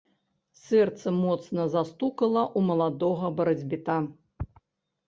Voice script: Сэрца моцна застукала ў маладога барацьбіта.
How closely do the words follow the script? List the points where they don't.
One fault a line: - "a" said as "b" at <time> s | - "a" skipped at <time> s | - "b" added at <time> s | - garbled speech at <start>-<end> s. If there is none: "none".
none